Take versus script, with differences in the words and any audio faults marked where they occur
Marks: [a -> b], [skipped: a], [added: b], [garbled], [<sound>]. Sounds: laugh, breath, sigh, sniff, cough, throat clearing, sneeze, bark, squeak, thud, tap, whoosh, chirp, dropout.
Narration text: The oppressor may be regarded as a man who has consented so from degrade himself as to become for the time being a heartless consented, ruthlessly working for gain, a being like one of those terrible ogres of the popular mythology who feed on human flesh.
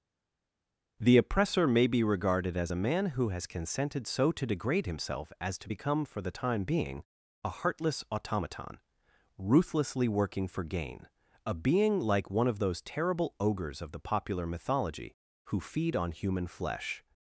The oppressor may be regarded as a man who has consented so [from -> to] degrade himself as to become for the time being a heartless [consented, -> automaton] ruthlessly working for gain, a being like one of those terrible ogres of the popular mythology who feed on human flesh.